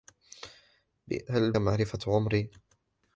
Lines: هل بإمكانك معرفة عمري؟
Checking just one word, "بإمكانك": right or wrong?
wrong